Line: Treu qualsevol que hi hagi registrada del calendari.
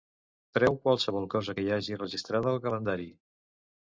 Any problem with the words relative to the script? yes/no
yes